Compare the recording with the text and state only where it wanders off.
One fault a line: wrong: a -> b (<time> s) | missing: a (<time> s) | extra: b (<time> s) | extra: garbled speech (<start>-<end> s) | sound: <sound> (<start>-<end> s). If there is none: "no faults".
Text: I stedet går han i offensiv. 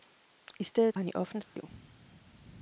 missing: går (1.0 s)
sound: dropout (1.4-1.6 s)